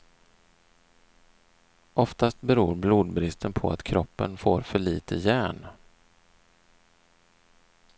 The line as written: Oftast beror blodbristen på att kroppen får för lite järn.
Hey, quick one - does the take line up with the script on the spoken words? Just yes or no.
yes